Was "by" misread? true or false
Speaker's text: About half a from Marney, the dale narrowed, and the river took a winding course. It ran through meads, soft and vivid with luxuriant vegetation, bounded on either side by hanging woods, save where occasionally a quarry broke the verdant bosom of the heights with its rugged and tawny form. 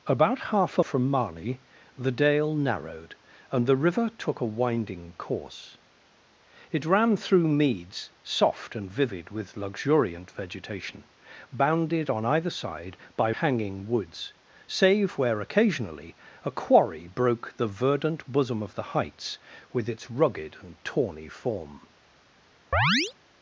false